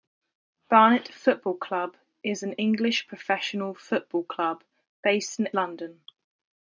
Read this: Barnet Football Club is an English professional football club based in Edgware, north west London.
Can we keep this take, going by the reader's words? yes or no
no